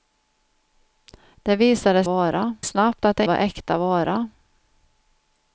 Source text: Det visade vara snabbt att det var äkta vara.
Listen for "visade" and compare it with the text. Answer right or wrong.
right